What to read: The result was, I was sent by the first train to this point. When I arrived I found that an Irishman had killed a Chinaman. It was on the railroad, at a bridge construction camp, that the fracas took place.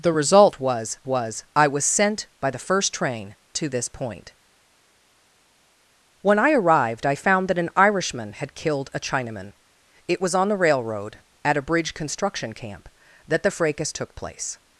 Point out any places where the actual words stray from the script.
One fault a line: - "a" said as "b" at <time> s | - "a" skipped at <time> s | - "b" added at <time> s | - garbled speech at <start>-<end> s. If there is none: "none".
- "was" added at 1.1 s